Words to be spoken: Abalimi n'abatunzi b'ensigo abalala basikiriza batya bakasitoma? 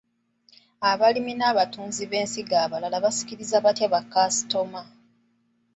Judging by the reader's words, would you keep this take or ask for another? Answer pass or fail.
pass